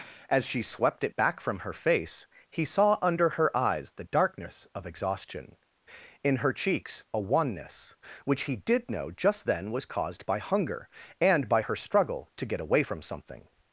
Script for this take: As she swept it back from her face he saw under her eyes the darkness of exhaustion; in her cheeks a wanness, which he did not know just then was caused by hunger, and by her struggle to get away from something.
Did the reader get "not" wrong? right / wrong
wrong